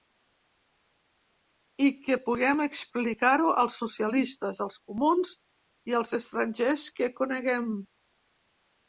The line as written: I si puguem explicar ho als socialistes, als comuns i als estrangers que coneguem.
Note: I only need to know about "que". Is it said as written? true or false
true